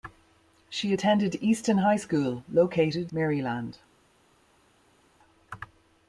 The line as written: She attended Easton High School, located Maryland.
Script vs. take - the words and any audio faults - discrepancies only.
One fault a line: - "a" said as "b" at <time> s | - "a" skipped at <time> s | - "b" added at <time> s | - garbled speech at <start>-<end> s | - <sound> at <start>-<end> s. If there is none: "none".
none